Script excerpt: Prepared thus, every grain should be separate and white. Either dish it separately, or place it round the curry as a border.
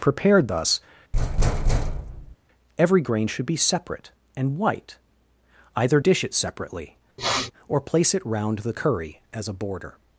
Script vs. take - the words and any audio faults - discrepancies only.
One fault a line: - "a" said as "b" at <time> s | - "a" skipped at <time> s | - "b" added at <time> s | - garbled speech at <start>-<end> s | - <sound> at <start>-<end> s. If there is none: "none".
- thud at 1.1-2.4 s
- sniff at 7.2-7.5 s